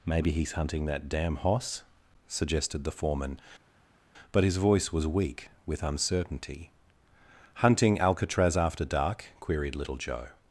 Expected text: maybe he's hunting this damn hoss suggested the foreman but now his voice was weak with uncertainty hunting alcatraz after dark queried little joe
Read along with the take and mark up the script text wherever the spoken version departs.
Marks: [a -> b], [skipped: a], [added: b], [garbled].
maybe he's hunting [this -> that] damn hoss suggested the foreman but [skipped: now] his voice was weak with uncertainty hunting alcatraz after dark queried little joe